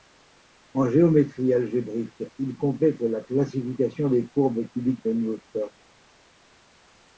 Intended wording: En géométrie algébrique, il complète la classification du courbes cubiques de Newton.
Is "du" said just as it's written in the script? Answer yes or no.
no